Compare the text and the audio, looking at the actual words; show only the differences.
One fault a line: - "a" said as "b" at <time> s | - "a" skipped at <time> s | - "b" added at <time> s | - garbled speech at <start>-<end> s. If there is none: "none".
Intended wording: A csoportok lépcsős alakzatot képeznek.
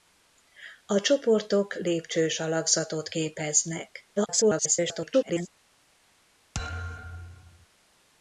- garbled speech at 4.2-5.5 s